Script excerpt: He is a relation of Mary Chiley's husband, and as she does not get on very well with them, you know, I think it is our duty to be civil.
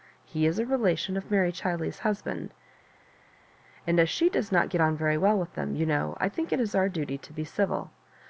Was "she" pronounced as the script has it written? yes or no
yes